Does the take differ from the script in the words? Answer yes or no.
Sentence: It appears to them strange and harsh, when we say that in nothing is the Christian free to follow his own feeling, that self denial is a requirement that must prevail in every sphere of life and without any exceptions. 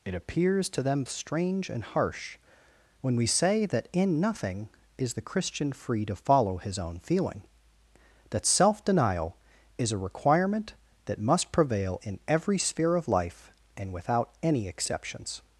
no